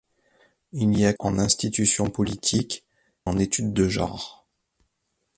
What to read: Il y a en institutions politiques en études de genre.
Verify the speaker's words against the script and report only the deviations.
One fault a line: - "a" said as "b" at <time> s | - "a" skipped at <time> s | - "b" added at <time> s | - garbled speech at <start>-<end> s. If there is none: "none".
none